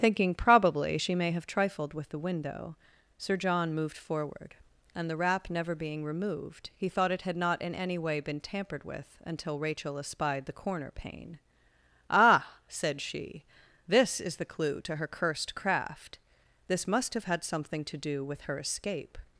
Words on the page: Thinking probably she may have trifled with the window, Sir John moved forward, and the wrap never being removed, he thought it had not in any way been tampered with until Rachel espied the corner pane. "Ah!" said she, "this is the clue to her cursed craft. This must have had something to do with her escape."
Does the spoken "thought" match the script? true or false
true